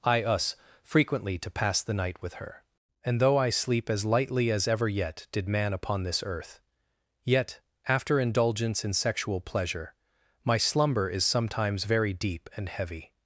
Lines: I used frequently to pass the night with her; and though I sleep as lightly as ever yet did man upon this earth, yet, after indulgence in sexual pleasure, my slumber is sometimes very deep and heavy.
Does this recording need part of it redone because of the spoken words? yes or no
yes